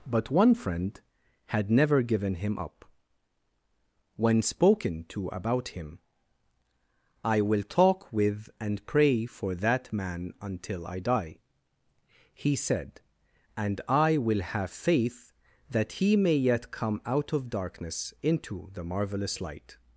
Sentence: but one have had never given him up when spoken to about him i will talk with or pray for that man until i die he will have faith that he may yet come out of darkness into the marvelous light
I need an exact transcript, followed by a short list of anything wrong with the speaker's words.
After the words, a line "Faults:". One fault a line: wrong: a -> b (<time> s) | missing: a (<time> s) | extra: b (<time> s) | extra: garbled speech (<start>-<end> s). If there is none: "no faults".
but one friend had never given him up when spoken to about him i will talk with and pray for that man until i die he said and i will have faith that he may yet come out of darkness into the marvelous light
Faults:
wrong: have -> friend (0.6 s)
wrong: or -> and (8.6 s)
extra: said and i (12.5 s)